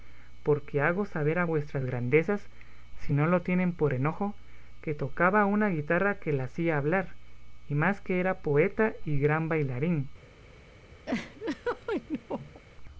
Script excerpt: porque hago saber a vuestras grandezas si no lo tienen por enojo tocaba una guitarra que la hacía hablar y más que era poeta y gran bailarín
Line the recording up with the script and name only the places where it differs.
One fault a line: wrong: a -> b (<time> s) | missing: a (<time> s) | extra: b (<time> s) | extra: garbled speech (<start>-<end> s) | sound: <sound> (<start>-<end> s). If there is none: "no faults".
extra: que (4.8 s)
sound: laugh (11.1-12.6 s)